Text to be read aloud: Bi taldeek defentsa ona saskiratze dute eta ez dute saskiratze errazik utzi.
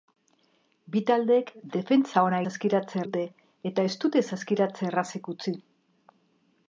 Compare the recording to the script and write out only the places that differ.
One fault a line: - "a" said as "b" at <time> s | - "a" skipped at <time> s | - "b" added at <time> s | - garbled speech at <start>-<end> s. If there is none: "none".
none